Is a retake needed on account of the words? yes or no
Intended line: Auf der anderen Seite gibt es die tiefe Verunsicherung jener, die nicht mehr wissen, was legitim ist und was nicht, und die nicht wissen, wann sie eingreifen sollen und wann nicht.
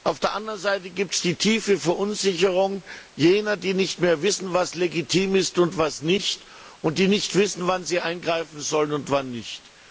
no